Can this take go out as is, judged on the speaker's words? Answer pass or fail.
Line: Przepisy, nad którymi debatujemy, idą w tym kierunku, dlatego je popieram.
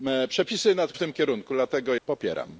fail